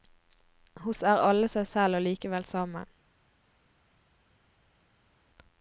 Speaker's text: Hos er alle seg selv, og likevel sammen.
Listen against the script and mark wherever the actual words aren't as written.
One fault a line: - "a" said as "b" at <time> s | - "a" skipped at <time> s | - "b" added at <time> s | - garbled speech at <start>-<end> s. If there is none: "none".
none